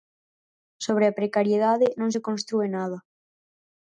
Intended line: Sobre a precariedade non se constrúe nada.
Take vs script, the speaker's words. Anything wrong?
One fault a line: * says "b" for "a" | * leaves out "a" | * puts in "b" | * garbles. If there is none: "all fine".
all fine